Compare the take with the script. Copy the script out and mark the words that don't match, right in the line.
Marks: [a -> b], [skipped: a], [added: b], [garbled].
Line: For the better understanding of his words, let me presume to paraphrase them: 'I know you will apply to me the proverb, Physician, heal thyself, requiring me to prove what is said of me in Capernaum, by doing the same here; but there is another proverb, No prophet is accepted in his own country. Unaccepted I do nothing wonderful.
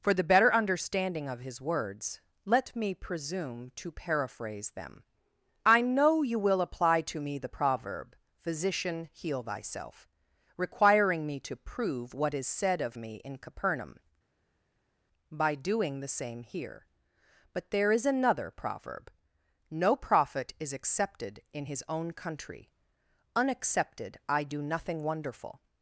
For the better understanding of his words, let me presume to paraphrase them: 'I know you will apply to me the proverb, Physician, heal thyself, requiring me to prove what is said of me in Capernaum, by doing the same here; but there is another proverb, No prophet is accepted in his own country. Unaccepted I do nothing wonderful.